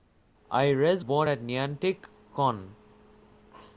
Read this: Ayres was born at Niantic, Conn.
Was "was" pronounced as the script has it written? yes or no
no